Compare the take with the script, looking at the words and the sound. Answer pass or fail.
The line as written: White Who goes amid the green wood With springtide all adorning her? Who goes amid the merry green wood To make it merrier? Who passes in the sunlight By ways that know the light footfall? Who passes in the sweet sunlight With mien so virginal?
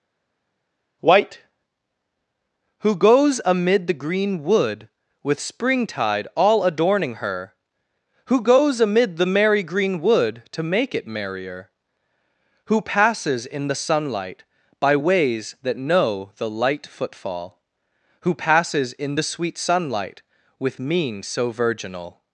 pass